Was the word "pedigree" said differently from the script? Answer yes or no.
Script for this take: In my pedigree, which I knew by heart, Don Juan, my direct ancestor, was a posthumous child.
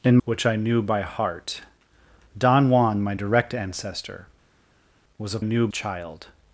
yes